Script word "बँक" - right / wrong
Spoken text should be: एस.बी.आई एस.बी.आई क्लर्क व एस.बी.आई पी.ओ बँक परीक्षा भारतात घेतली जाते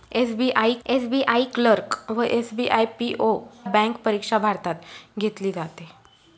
right